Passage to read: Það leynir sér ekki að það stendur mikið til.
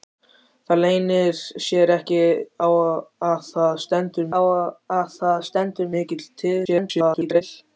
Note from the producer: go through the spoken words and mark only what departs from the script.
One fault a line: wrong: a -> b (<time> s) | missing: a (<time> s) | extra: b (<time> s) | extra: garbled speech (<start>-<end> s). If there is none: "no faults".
extra: að það stendur (4.4 s)
extra: garbled speech (6.6-7.4 s)